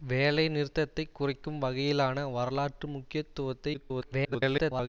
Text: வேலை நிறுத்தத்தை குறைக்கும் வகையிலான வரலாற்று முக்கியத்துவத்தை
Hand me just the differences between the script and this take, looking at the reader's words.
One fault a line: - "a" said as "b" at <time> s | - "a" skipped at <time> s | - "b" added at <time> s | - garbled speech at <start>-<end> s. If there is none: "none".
- garbled speech at 3.7-4.9 s